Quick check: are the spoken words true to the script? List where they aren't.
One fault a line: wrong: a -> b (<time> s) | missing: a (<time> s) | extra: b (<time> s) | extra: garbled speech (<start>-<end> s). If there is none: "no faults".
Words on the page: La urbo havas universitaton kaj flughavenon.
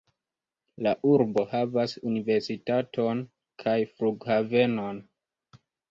no faults